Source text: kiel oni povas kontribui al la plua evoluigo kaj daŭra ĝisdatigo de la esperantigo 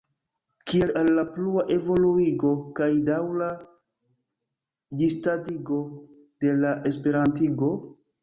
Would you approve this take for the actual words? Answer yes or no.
no